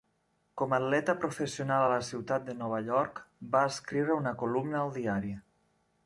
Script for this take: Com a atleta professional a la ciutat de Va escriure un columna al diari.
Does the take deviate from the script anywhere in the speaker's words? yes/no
yes